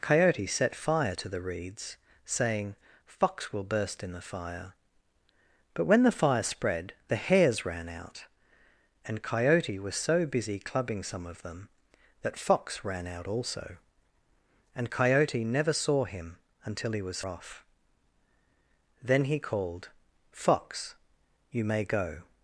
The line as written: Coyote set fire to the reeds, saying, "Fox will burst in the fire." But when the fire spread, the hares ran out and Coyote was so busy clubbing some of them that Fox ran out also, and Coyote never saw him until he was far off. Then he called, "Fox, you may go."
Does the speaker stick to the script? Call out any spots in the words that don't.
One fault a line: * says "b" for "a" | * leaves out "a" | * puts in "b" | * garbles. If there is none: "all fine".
* leaves out "far"